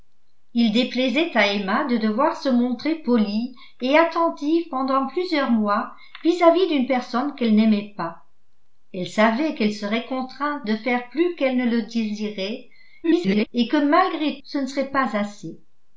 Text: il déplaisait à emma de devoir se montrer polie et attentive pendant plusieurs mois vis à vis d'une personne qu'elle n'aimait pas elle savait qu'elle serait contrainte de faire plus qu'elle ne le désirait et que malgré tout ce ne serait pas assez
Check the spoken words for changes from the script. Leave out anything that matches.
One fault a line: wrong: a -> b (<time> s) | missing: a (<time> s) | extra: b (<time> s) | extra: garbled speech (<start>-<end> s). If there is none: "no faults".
extra: garbled speech (13.0-13.5 s)
missing: tout (14.4 s)